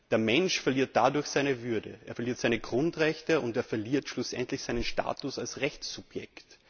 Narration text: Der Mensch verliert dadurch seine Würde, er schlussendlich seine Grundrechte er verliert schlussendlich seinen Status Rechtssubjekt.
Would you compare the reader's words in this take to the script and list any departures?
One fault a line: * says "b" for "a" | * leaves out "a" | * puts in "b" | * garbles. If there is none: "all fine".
* says "verliert" for "schlussendlich"
* puts in "und"
* puts in "als"